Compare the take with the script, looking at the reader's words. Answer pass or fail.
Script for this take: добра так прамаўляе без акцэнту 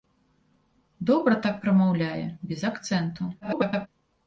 fail